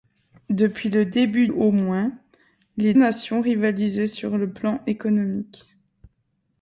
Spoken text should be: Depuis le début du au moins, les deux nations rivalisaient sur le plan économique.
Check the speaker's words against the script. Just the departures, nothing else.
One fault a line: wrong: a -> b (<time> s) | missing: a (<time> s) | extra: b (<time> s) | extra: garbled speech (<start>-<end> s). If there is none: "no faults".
missing: du (1.5 s)
missing: deux (2.9 s)